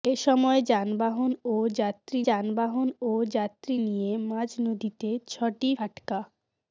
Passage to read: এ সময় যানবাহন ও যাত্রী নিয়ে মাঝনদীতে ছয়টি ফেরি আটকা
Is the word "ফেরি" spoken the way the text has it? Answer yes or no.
no